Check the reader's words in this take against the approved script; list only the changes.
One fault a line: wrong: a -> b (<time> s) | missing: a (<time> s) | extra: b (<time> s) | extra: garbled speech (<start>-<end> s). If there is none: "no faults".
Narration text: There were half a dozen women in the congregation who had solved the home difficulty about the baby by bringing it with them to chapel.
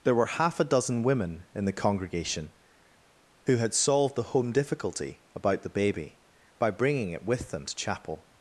no faults